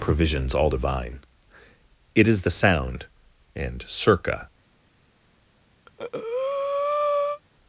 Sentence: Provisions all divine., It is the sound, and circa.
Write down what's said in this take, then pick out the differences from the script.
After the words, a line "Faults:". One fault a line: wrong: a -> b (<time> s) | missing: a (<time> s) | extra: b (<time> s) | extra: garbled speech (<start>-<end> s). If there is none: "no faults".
Provisions all divine., It is the sound, and circa.
Faults:
no faults